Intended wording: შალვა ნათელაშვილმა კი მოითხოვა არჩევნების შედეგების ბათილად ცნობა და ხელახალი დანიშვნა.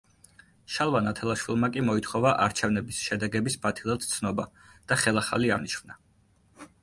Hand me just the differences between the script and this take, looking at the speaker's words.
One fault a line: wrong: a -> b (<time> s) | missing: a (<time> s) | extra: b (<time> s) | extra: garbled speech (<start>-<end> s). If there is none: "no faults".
no faults